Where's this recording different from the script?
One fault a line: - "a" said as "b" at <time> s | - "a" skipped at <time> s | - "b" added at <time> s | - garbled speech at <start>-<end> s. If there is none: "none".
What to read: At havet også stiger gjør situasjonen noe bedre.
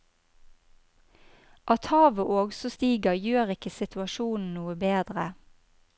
- "ikke" added at 3.6 s